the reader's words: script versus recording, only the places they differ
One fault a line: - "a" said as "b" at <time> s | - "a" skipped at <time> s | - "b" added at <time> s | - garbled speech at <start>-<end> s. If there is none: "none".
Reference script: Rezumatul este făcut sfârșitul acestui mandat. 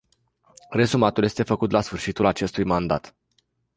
- "la" added at 1.7 s